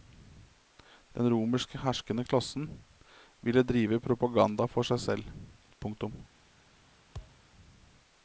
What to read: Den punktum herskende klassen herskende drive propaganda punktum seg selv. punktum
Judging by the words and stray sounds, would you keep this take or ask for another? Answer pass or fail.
fail